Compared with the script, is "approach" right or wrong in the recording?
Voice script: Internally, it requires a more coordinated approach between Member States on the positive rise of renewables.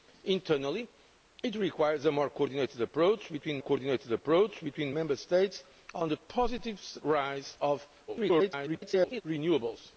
right